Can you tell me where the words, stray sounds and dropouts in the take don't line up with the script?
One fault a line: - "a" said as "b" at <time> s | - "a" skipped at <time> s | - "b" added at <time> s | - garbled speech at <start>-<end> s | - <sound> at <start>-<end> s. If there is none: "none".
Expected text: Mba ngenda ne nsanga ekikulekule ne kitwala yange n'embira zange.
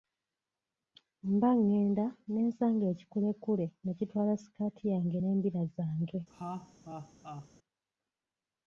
- "sikaati" added at 4.4 s
- laugh at 6.3-7.5 s